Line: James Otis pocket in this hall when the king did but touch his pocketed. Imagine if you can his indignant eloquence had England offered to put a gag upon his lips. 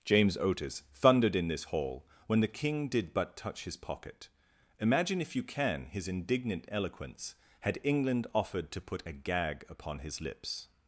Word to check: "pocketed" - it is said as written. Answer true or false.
false